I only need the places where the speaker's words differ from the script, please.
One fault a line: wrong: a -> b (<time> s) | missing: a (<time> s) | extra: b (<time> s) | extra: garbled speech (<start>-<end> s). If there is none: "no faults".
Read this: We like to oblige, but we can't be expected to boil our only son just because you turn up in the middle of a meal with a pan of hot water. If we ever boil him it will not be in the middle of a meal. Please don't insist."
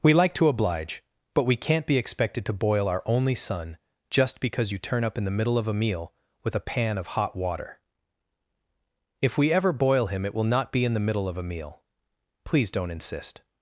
no faults